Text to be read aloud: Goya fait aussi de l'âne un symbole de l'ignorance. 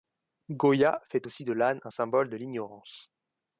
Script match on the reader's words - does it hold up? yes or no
yes